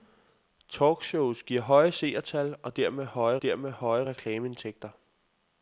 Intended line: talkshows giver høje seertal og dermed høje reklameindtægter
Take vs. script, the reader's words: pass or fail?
fail